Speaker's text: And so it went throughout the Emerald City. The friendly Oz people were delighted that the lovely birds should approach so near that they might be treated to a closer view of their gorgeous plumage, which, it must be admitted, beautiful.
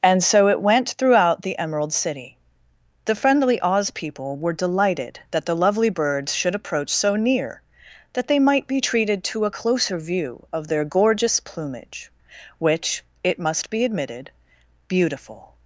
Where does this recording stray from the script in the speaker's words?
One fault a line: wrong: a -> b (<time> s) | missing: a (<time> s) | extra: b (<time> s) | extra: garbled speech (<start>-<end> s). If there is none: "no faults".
no faults